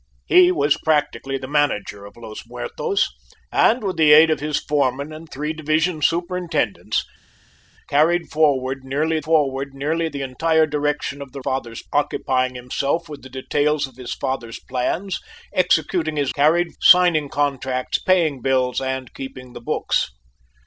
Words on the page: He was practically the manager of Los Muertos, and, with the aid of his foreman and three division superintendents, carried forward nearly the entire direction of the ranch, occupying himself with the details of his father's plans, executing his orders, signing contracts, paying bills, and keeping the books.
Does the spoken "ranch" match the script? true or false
false